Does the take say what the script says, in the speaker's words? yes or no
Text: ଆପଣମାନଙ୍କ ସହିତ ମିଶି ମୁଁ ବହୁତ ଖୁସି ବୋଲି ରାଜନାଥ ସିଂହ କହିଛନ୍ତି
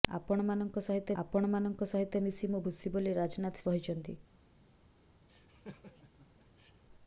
no